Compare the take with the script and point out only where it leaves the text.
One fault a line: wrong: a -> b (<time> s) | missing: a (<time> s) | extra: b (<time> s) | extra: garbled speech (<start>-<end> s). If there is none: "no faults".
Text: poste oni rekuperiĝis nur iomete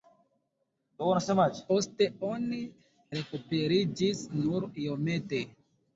no faults